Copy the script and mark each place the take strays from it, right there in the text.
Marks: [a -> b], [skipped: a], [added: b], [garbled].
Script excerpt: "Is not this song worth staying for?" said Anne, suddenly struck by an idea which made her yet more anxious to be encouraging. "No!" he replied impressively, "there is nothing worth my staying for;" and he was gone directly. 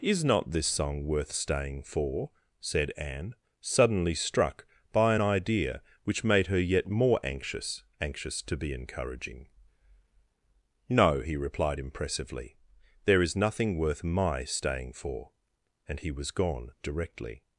"Is not this song worth staying for?" said Anne, suddenly struck by an idea which made her yet more anxious [added: anxious] to be encouraging. "No!" he replied impressively, "there is nothing worth my staying for;" and he was gone directly.